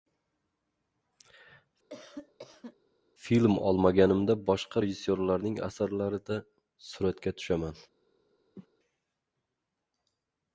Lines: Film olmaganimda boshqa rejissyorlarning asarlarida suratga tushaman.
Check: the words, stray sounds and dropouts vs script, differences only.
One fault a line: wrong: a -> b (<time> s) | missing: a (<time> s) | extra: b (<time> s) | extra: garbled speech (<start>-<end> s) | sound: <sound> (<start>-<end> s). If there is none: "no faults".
sound: cough (1.9-2.8 s)
sound: cough (8.6-8.7 s)